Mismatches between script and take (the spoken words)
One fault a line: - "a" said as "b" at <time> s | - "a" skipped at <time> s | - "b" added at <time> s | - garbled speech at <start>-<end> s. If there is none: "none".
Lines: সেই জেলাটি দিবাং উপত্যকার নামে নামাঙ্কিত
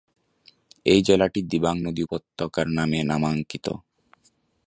- "সেই" said as "এই" at 0.8 s
- "নদী" added at 1.9 s